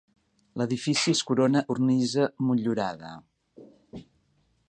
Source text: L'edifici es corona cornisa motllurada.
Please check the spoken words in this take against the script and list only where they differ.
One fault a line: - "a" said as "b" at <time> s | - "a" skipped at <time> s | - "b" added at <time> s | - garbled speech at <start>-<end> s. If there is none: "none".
none